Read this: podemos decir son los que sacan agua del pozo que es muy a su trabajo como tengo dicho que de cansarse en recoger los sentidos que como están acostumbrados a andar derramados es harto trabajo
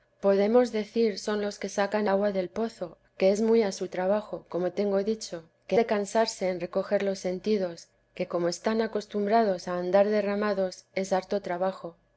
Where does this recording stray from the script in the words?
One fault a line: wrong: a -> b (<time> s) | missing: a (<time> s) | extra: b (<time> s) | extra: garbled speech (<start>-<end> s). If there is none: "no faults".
no faults